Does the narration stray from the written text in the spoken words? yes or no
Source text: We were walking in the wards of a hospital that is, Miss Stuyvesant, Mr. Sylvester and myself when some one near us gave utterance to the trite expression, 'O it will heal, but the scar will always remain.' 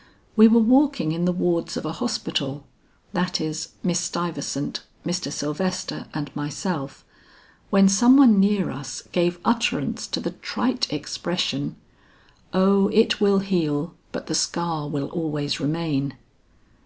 no